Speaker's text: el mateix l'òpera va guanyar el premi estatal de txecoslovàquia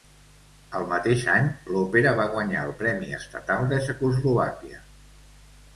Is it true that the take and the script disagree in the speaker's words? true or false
true